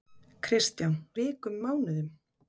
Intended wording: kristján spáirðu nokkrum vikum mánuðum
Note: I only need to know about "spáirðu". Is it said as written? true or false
false